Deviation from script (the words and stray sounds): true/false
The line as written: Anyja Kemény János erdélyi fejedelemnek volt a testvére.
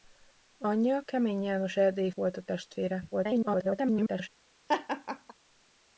true